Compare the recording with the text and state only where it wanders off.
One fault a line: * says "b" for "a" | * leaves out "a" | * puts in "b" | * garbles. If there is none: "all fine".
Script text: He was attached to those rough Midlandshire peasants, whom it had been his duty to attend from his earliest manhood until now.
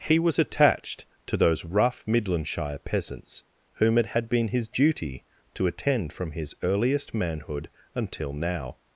all fine